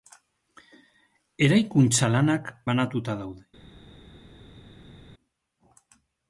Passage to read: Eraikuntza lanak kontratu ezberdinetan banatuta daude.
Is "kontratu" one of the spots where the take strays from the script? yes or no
yes